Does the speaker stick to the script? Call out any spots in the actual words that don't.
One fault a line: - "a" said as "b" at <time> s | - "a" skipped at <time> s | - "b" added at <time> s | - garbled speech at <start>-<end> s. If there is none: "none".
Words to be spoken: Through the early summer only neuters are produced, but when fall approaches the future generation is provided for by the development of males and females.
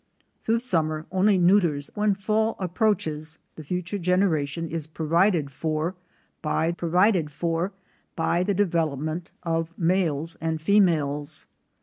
- "the early" skipped at 0.6 s
- "are produced but" skipped at 1.9 s
- "provided for by" added at 6.7 s